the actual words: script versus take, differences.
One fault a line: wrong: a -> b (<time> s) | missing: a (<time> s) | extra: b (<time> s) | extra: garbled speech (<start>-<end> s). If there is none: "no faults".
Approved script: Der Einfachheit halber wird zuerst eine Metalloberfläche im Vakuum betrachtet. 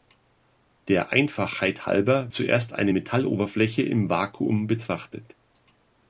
missing: wird (2.3 s)